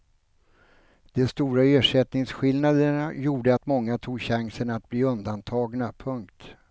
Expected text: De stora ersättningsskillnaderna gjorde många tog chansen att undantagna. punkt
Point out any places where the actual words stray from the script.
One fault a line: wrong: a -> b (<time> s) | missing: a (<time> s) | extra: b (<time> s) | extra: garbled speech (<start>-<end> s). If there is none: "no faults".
extra: att (3.5 s)
extra: bli (4.9 s)